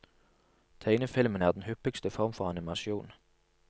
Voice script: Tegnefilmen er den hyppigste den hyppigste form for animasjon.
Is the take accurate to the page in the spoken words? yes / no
no